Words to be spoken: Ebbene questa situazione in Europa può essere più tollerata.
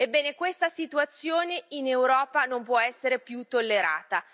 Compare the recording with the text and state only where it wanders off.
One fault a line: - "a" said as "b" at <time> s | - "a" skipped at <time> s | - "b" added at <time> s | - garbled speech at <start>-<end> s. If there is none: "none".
- "non" added at 2.4 s